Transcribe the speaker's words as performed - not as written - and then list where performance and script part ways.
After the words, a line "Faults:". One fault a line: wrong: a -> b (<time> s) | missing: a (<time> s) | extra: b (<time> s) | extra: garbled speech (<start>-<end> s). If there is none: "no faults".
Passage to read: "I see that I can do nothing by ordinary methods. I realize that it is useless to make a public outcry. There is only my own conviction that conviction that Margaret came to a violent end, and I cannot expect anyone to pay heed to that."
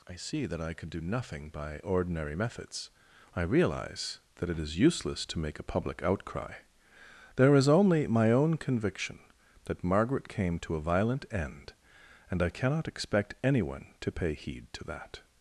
"I see that I can do nothing by ordinary methods. I realize that it is useless to make a public outcry. There is only my own conviction that Margaret came to a violent end, and I cannot expect anyone to pay heed to that."
Faults:
missing: conviction that (9.8 s)